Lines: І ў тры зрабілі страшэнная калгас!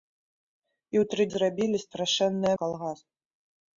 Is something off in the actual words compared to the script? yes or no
no